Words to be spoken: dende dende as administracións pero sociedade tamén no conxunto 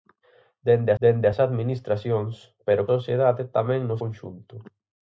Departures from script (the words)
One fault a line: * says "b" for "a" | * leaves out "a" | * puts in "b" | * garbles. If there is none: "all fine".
all fine